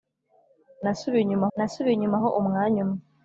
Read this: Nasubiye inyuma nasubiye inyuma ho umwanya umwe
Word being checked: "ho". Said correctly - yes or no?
yes